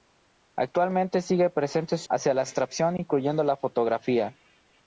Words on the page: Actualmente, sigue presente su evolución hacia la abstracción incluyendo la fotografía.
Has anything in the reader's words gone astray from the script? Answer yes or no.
yes